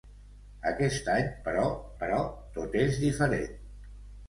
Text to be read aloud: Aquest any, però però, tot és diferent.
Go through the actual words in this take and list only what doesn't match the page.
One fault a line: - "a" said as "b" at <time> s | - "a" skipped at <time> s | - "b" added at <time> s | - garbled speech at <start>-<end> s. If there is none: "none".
none